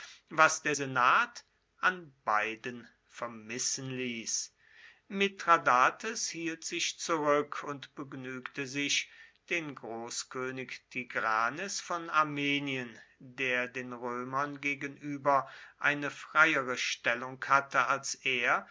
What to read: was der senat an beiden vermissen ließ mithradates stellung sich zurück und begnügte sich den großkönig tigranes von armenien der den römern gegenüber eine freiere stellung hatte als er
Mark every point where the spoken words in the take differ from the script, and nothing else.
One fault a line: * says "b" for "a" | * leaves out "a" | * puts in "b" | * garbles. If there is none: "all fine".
* says "hielt" for "stellung"